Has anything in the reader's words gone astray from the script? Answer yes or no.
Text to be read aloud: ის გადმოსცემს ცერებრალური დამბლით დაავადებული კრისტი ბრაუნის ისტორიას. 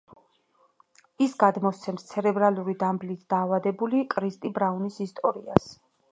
no